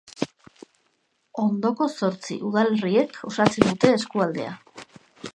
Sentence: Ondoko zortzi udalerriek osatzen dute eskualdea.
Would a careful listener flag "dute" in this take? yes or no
no